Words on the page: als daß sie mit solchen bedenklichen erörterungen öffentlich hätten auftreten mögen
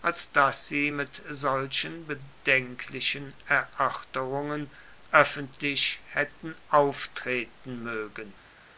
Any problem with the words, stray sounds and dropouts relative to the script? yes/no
no